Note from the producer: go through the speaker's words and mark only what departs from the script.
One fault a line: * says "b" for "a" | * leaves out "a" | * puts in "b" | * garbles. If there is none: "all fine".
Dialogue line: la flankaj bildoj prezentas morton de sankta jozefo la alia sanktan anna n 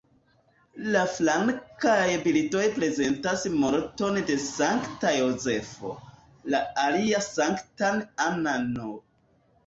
all fine